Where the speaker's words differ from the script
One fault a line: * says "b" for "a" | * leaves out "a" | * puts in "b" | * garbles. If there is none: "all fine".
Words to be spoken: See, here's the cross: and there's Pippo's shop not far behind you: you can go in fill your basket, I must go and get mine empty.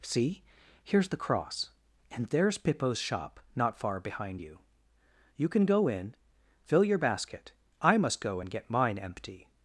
all fine